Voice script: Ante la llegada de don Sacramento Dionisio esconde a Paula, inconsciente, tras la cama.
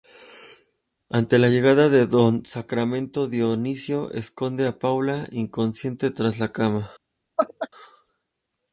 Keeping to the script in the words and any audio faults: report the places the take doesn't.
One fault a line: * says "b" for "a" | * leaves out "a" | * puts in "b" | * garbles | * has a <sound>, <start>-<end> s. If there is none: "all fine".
* has a laugh, 7.4-7.7 s